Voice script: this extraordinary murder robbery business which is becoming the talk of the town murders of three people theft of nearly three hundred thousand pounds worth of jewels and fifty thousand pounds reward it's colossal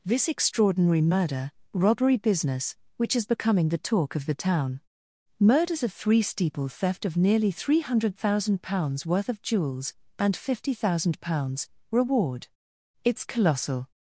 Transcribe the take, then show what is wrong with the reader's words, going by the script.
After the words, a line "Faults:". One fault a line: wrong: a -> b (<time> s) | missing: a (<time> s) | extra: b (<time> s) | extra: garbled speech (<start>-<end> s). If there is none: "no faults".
this extraordinary murder robbery business which is becoming the talk of the town murders of three steeple theft of nearly three hundred thousand pounds worth of jewels and fifty thousand pounds reward it's colossal
Faults:
wrong: people -> steeple (6.2 s)